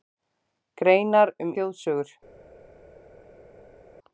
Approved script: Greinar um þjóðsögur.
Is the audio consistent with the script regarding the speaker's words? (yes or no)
yes